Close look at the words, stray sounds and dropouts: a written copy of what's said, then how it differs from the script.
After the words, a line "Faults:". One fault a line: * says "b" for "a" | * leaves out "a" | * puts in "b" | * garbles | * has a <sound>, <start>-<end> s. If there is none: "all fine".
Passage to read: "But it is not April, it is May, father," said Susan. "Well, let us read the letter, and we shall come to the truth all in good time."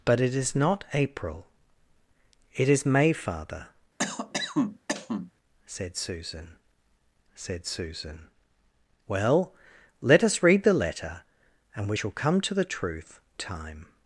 "But it is not April, it is May, father," said Susan said Susan. "Well, let us read the letter, and we shall come to the truth time."
Faults:
* has a cough, 4.0-5.3 s
* puts in "said Susan"
* leaves out "all in good"